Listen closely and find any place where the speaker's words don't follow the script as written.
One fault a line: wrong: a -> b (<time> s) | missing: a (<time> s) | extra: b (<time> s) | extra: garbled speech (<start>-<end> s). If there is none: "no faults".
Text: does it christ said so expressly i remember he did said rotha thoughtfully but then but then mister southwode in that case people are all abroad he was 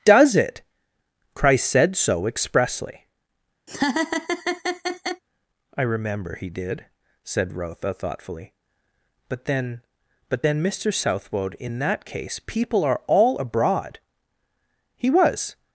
no faults